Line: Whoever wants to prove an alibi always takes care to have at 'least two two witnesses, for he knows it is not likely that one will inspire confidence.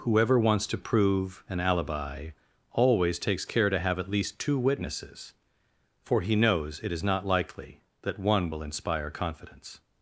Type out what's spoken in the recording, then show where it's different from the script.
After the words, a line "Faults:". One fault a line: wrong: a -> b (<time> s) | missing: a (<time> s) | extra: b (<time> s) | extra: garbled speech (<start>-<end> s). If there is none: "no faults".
Whoever wants to prove an alibi always takes care to have at 'least two witnesses, for he knows it is not likely that one will inspire confidence.
Faults:
missing: two (4.6 s)